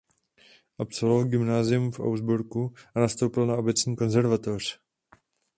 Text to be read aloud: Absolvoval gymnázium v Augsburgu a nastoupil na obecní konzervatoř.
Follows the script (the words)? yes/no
yes